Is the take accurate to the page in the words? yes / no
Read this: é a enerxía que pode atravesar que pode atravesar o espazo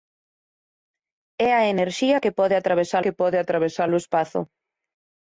yes